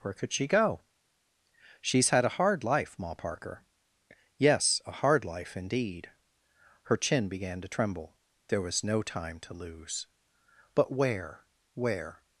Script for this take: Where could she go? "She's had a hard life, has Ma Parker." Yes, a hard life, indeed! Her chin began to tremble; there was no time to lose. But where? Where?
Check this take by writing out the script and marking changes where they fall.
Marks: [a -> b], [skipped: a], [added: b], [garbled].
Where could she go? "She's had a hard life, [skipped: has] Ma Parker." Yes, a hard life, indeed! Her chin began to tremble; there was no time to lose. But where? Where?